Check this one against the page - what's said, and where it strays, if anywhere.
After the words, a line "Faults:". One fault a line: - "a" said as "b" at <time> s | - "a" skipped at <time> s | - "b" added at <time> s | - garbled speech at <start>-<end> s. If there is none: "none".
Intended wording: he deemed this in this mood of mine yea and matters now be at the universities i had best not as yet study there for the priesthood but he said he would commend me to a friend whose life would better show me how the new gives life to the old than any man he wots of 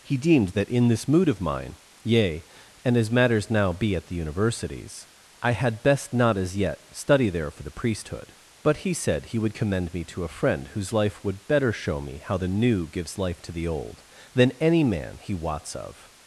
he deemed that in this mood of mine yea and as matters now be at the universities i had best not as yet study there for the priesthood but he said he would commend me to a friend whose life would better show me how the new gives life to the old than any man he wots of
Faults:
- "this" said as "that" at 0.5 s
- "as" added at 3.0 s